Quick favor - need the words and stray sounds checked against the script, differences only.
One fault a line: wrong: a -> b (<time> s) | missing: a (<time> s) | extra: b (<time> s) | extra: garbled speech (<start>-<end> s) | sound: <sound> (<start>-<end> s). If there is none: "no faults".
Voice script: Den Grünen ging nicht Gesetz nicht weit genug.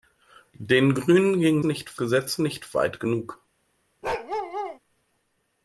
sound: bark (4.0-4.8 s)